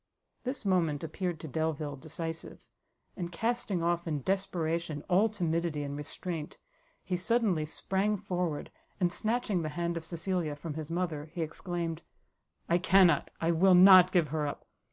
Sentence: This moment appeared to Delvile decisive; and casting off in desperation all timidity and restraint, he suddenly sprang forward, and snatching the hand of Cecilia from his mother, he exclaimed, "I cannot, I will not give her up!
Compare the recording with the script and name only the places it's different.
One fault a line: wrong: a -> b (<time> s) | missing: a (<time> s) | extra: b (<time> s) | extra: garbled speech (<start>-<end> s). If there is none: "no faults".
no faults